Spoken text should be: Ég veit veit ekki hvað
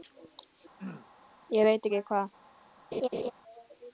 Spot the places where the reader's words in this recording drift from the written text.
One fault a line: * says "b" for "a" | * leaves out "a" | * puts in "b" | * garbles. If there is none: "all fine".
* leaves out "veit"